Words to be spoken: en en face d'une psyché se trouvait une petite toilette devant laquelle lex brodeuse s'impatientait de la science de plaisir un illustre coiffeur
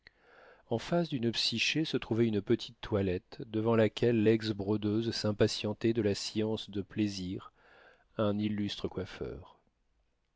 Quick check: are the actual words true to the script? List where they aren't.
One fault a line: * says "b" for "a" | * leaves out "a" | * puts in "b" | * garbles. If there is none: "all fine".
* leaves out "en"